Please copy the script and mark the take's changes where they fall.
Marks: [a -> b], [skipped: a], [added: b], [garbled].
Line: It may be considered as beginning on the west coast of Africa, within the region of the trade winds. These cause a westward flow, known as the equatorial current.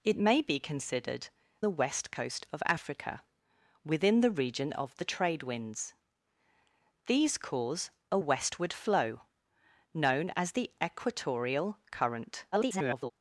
It may be considered [skipped: as beginning on] the west coast of Africa, within the region of the trade winds. These cause a westward flow, known as the equatorial current. [garbled]